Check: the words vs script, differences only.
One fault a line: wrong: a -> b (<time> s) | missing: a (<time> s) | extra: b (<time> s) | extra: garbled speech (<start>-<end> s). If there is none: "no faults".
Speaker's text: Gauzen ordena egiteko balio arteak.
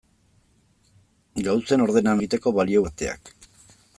no faults